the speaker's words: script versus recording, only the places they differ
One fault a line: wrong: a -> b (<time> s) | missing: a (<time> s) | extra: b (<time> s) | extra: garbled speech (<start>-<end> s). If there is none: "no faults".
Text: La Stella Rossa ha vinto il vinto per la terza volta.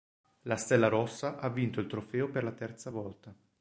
wrong: vinto -> trofeo (1.9 s)